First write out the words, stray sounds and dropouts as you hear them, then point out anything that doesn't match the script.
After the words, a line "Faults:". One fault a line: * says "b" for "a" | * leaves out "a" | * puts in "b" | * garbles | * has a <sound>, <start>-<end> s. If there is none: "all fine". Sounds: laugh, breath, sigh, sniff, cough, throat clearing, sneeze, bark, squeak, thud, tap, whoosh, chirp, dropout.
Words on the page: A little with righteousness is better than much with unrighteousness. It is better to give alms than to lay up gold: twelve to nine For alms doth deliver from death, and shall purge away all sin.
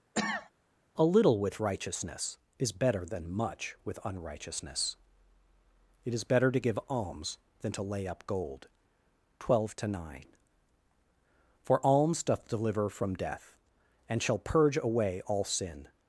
A little with righteousness is better than much with unrighteousness. It is better to give alms than to lay up gold: twelve to nine For alms doth deliver from death, and shall purge away all sin.
Faults:
* has a cough, 0.1-0.5 s